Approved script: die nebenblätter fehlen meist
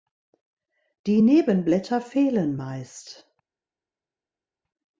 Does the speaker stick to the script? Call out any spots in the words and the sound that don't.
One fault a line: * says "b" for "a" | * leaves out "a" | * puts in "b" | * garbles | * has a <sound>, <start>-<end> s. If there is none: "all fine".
all fine